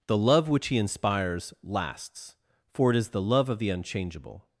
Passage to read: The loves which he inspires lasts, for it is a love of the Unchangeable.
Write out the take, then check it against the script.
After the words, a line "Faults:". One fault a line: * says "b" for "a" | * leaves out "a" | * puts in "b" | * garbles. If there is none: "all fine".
The love which he inspires lasts, for it is the love of the Unchangeable.
Faults:
* says "love" for "loves"
* says "the" for "a"